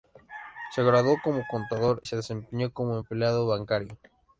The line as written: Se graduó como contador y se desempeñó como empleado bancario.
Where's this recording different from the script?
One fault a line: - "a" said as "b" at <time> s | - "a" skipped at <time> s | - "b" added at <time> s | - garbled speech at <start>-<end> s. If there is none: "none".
- "y" skipped at 2.0 s